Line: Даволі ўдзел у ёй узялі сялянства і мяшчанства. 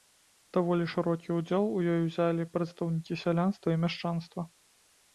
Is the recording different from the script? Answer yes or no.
yes